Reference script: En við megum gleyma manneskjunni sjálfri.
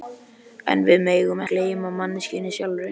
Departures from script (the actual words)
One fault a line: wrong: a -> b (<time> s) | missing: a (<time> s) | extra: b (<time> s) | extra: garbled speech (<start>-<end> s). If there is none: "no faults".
no faults